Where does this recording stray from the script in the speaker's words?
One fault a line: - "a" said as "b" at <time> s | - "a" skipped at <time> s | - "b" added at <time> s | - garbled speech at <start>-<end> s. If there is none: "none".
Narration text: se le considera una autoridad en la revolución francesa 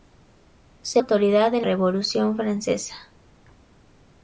- "le considera una" skipped at 1.0 s
- "la" skipped at 1.7 s